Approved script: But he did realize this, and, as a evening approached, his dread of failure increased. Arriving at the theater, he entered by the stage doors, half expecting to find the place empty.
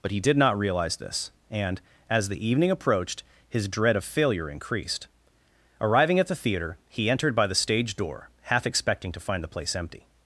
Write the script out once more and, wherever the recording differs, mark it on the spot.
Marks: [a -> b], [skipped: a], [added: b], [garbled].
But he did [added: not] realize this, and, as [a -> the] evening approached, his dread of failure increased. Arriving at the theater, he entered by the stage [doors, -> door] half expecting to find the place empty.